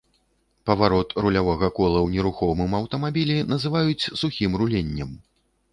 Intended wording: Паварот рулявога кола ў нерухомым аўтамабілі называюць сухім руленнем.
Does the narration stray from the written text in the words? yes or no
no